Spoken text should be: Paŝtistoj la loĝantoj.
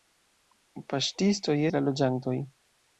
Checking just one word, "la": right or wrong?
right